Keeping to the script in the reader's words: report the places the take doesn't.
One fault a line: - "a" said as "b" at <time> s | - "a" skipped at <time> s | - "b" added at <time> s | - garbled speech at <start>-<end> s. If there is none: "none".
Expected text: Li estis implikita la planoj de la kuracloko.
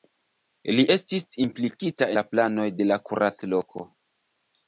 none